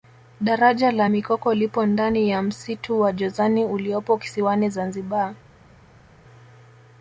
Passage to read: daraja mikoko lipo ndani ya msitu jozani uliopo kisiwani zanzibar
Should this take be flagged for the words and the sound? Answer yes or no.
yes